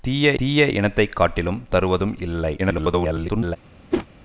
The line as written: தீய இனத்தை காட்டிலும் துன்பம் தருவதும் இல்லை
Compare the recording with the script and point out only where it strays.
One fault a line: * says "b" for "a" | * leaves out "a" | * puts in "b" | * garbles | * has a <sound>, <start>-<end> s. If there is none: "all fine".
* puts in "தீய"
* leaves out "துன்பம்"
* garbles
* has a whoosh, 3.9-4.1 s